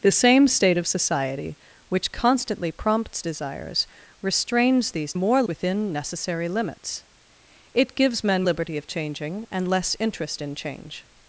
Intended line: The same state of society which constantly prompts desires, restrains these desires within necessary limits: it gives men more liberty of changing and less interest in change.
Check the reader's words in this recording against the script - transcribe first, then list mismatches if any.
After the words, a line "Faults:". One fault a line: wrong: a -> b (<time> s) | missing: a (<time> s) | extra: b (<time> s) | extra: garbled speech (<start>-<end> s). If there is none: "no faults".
The same state of society which constantly prompts desires, restrains these more within necessary limits: it gives men liberty of changing and less interest in change.
Faults:
wrong: desires -> more (5.1 s)
missing: more (8.4 s)